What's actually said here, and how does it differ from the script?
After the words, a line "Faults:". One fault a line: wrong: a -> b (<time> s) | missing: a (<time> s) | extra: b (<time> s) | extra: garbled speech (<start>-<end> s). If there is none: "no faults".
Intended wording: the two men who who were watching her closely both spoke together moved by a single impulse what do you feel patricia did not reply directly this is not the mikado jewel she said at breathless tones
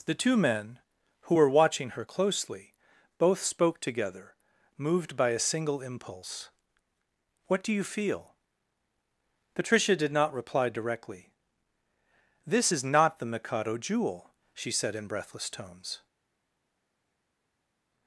the two men who were watching her closely both spoke together moved by a single impulse what do you feel patricia did not reply directly this is not the mikado jewel she said in breathless tones
Faults:
missing: who (1.4 s)
wrong: at -> in (14.9 s)